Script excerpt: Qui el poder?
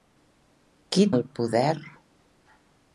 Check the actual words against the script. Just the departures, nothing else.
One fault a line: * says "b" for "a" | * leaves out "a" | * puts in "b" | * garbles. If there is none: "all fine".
all fine